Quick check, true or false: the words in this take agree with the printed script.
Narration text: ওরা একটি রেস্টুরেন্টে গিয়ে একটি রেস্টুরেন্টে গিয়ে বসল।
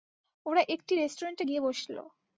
false